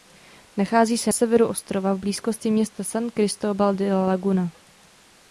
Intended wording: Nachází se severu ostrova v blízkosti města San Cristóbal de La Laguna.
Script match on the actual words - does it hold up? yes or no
yes